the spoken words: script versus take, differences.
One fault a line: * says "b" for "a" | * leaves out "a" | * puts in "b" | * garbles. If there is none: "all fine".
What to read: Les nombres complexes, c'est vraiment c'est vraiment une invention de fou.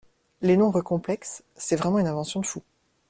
* leaves out "c'est vraiment"